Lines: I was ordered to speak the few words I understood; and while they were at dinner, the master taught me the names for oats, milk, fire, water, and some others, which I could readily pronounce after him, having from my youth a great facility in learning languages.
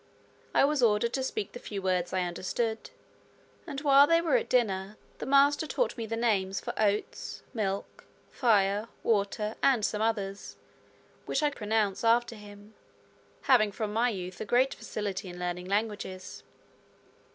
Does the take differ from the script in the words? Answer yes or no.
yes